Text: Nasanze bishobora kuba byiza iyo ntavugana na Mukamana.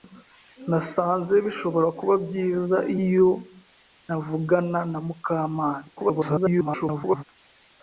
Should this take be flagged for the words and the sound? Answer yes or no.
yes